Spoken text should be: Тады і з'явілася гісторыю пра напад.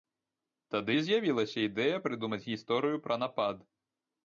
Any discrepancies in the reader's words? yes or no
yes